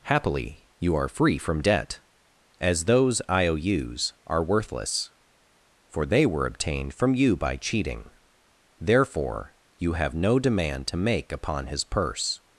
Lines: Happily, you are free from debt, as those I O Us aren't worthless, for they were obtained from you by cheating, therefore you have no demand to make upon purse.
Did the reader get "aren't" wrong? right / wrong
wrong